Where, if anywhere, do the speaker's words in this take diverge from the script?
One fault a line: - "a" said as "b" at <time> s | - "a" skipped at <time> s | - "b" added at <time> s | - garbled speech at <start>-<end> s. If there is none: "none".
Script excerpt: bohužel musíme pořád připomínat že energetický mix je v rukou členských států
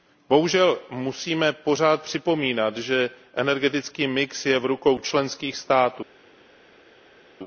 none